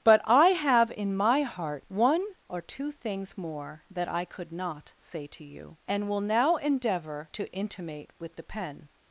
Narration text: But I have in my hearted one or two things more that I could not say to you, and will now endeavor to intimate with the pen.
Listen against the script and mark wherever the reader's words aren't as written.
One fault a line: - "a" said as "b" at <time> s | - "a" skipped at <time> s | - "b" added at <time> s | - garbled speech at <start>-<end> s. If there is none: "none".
- "hearted" said as "heart" at 1.4 s